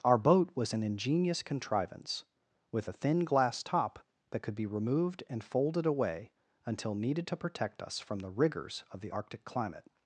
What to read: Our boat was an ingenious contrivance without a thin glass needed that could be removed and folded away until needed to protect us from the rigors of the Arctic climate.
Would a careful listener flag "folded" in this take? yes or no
no